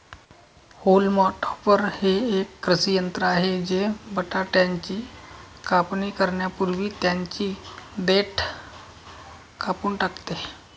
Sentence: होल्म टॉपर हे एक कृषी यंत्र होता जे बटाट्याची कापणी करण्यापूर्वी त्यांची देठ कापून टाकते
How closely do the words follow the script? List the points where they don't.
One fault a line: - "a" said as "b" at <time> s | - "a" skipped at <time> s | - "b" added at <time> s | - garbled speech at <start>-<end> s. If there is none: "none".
- "होता" said as "आहे" at 3.2 s